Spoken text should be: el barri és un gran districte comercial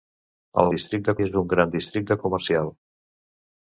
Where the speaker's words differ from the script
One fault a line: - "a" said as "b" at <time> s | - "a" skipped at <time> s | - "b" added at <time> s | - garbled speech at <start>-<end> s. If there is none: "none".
- "barri" said as "districte" at 0.8 s